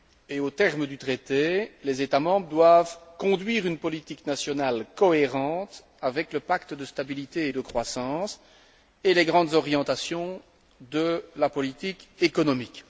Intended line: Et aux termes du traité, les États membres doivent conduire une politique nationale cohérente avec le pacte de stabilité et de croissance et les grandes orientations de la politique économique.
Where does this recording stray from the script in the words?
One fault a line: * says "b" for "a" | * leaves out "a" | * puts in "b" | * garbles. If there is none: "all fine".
all fine